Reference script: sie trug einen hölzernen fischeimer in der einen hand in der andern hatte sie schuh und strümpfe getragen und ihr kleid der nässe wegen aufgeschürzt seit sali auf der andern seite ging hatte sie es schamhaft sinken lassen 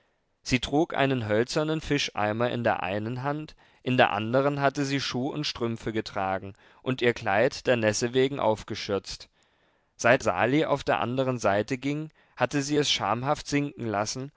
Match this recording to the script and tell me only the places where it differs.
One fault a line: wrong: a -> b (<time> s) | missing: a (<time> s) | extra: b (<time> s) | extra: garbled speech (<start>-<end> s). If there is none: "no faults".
no faults